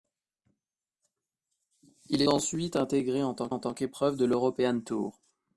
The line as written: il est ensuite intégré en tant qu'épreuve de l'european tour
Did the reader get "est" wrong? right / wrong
wrong